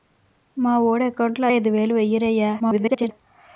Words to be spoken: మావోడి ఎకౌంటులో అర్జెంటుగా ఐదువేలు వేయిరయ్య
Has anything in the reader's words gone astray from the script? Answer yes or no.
yes